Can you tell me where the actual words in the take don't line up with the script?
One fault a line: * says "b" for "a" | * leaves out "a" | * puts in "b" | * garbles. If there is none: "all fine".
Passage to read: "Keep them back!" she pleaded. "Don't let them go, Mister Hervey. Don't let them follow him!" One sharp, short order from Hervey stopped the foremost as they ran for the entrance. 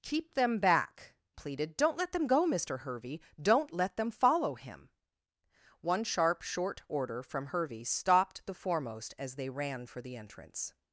* leaves out "she"